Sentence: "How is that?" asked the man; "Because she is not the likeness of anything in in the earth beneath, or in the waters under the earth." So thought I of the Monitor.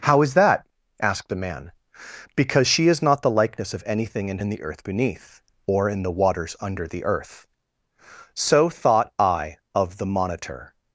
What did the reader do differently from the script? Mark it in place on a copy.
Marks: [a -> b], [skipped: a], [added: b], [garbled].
"How is that?" asked the man; "Because she is not the likeness of anything in in the earth beneath, or in the waters under the earth." So thought I of the Monitor.